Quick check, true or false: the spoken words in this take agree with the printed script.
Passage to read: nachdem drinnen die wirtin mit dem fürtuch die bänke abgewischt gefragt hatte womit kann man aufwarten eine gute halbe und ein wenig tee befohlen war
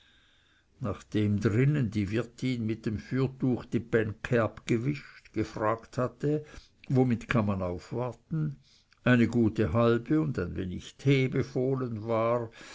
true